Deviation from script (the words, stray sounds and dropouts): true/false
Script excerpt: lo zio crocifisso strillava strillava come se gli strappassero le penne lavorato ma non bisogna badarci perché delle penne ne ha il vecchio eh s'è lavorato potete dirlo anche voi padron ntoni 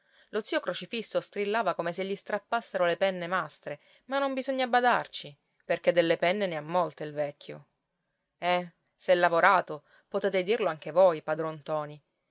true